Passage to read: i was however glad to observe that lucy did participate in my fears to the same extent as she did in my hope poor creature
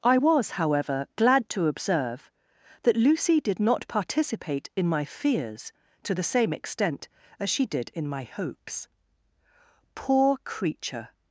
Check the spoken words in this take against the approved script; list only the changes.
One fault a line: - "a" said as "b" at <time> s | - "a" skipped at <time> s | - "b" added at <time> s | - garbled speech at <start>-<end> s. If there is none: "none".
- "not" added at 3.6 s
- "hope" said as "hopes" at 8.2 s